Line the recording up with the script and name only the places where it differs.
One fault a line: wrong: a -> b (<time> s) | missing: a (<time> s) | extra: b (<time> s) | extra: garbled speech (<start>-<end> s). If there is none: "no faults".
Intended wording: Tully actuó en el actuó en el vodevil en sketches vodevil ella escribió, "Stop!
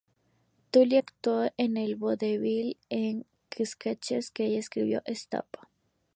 missing: actuó en el (2.0 s)
wrong: vodevil -> que (4.3 s)